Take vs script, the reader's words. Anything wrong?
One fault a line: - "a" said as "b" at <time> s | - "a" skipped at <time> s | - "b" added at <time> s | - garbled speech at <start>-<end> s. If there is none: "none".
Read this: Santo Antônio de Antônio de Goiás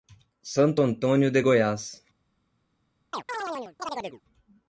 - "Antônio de" skipped at 1.4 s